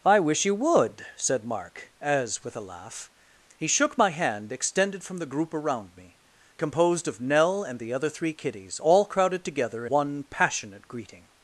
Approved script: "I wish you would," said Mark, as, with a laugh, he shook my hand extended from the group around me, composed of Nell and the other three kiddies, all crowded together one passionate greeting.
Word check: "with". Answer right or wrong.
right